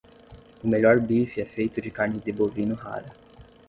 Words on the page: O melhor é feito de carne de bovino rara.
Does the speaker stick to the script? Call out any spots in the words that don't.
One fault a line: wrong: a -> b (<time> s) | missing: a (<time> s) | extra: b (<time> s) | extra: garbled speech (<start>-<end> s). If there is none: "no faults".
extra: bife (1.0 s)